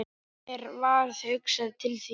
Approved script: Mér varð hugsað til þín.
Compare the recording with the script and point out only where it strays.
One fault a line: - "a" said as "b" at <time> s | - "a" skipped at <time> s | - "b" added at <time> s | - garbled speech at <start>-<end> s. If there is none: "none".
none